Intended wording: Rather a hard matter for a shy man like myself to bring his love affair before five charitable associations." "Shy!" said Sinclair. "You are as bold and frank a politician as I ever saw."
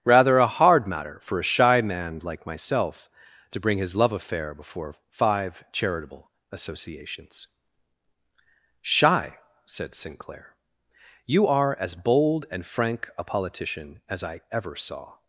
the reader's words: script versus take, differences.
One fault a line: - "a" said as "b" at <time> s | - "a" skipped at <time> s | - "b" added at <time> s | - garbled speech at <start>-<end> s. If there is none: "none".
none